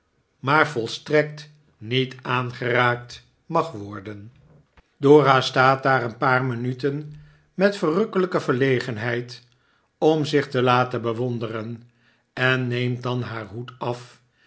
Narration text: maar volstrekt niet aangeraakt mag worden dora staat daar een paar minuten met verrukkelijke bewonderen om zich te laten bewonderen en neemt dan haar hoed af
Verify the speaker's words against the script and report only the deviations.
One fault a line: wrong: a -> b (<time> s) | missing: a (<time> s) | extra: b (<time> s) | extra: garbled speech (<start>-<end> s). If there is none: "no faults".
wrong: bewonderen -> verlegenheid (8.4 s)